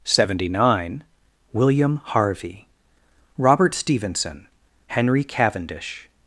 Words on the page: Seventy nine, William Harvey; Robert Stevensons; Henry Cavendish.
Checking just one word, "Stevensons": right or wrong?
wrong